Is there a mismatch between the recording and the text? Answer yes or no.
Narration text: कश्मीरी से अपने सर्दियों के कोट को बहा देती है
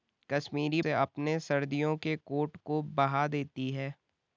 no